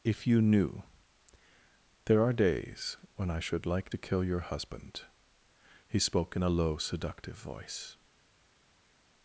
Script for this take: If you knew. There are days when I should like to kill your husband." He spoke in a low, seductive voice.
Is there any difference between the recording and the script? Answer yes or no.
no